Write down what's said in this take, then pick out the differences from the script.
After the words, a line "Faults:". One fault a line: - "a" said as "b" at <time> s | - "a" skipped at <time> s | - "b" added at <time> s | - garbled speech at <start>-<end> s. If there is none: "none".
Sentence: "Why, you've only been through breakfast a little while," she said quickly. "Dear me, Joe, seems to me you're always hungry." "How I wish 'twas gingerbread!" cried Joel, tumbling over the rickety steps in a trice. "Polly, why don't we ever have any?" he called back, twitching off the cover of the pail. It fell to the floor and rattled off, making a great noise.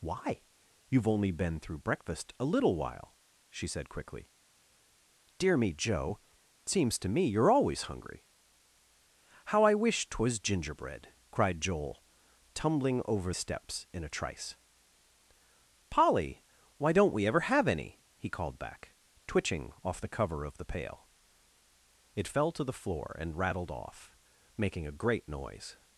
"Why, you've only been through breakfast a little while," she said quickly. "Dear me, Joe, seems to me you're always hungry." "How I wish 'twas gingerbread!" cried Joel, tumbling over steps in a trice. "Polly, why don't we ever have any?" he called back, twitching off the cover of the pail. It fell to the floor and rattled off, making a great noise.
Faults:
- "the rickety" skipped at 13.3 s